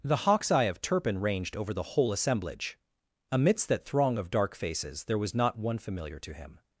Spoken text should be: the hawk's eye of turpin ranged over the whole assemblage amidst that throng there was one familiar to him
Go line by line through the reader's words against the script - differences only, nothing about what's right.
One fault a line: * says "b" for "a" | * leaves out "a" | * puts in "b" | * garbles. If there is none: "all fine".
* puts in "of dark faces"
* puts in "not"